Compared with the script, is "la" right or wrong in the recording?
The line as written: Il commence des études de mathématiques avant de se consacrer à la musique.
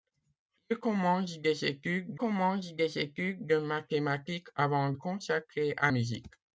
wrong